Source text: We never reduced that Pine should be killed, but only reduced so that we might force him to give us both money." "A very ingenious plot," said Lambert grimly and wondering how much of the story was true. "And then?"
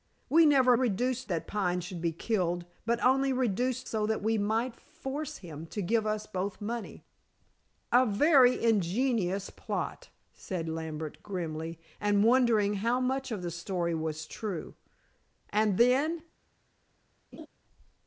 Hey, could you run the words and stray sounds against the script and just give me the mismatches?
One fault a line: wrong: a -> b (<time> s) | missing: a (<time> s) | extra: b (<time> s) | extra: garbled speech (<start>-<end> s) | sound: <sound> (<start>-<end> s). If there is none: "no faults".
sound: laugh (17.3-17.5 s)